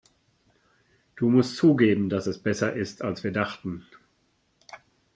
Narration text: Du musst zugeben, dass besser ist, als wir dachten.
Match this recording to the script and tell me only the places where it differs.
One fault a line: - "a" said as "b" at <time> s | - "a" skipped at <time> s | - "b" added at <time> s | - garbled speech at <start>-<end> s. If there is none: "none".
- "es" added at 2.3 s